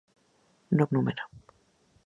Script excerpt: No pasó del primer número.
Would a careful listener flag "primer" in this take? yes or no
yes